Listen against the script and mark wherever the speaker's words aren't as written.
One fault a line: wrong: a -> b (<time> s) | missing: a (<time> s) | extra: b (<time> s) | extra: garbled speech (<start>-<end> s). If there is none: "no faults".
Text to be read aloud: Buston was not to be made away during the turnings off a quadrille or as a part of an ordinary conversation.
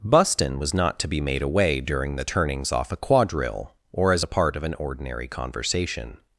no faults